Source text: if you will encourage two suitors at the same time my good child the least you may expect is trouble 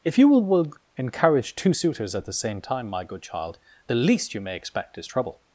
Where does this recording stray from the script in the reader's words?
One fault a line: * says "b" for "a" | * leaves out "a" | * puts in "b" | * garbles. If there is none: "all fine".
* puts in "will"